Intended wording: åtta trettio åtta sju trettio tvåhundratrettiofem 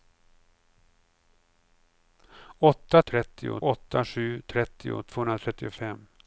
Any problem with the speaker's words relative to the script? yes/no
no